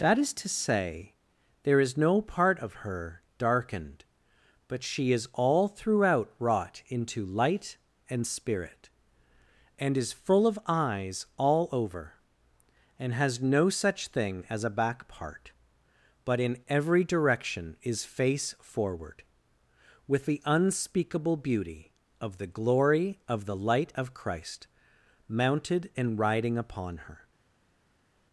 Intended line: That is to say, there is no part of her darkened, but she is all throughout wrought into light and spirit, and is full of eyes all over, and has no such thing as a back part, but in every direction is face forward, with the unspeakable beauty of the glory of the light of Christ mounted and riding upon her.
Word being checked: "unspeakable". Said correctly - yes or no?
yes